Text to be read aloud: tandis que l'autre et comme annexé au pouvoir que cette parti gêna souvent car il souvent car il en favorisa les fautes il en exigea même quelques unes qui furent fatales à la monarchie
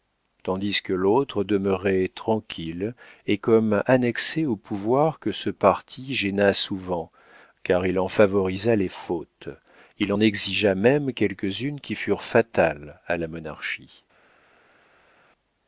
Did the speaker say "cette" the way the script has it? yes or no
no